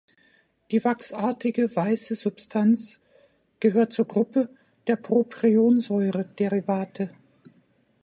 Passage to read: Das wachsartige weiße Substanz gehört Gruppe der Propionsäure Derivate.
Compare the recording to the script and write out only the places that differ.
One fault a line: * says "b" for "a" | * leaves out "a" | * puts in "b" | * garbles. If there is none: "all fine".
* says "Die" for "Das"
* puts in "zur"